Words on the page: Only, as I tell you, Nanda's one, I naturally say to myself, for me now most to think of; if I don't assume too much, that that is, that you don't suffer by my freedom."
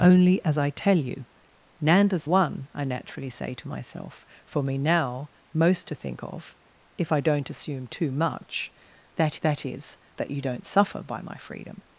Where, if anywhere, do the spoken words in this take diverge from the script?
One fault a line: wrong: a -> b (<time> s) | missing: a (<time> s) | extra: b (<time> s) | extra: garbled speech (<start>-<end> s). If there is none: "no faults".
no faults